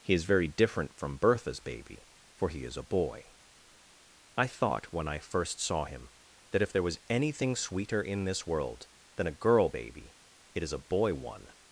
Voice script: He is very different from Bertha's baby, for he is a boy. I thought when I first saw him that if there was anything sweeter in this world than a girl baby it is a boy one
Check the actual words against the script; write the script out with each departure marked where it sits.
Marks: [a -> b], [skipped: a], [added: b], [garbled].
He is very different from Bertha's baby, for he is a boy. I thought when I first saw him that if there was anything sweeter in this world than a girl baby it is a boy one